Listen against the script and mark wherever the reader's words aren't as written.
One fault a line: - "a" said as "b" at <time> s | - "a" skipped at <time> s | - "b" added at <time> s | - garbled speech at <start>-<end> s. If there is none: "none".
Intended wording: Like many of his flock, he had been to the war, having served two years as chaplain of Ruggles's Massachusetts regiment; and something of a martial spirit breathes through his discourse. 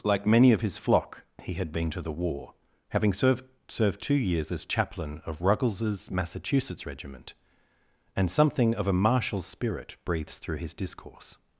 - "served" added at 3.7 s